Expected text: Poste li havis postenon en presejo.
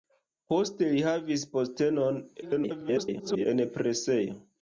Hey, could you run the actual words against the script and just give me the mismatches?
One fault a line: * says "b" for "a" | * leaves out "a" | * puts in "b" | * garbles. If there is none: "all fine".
* garbles